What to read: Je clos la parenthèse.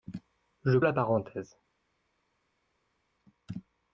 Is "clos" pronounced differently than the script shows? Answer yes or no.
yes